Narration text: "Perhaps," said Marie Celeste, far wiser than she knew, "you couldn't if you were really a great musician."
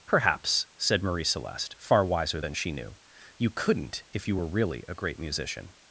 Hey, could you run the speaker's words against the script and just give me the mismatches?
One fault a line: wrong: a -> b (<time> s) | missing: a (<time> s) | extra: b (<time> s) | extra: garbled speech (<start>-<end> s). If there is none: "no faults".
no faults